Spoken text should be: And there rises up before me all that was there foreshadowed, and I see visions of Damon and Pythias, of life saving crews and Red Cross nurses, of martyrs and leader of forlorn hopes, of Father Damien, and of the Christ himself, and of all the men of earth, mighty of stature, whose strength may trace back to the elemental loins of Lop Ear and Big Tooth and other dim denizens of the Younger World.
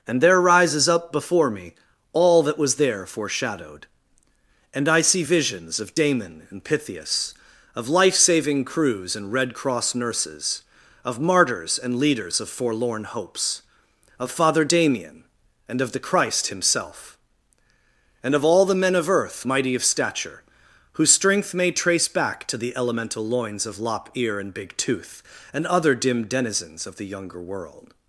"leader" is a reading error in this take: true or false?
true